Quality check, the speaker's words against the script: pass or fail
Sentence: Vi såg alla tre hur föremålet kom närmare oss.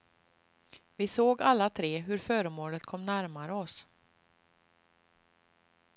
pass